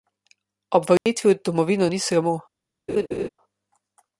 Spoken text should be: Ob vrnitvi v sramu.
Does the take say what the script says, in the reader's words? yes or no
no